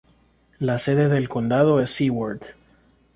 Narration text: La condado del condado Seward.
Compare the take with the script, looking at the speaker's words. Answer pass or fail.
fail